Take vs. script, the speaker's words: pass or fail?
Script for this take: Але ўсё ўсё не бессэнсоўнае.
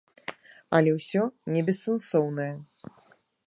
fail